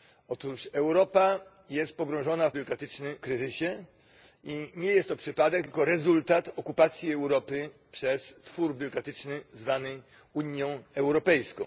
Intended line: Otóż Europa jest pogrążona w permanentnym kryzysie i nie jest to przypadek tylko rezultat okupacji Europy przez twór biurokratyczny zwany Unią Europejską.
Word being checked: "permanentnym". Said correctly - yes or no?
no